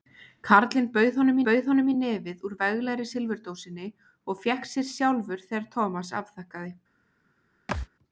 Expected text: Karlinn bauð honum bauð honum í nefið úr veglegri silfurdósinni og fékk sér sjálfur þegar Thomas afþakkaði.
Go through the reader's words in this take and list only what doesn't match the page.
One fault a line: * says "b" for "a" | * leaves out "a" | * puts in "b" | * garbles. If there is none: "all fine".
all fine